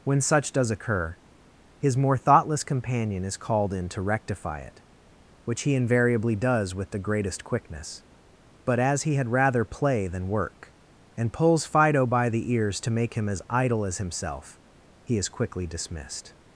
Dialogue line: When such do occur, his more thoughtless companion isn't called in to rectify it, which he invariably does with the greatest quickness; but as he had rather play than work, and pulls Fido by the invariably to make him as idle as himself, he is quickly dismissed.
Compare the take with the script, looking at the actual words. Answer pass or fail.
fail